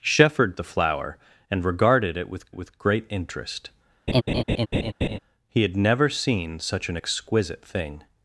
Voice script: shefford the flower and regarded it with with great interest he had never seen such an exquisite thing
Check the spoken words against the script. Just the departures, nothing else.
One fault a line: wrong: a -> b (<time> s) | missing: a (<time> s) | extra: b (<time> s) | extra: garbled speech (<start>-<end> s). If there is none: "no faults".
no faults